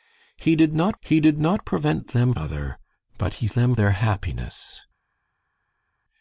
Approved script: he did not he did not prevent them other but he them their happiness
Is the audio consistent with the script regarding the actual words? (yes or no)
yes